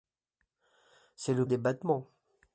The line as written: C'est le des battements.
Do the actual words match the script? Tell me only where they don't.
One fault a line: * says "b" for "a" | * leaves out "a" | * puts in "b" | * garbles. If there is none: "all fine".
all fine